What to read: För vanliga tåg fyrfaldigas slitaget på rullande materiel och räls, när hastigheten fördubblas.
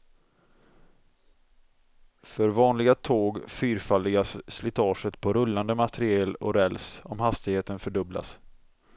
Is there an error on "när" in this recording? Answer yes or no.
yes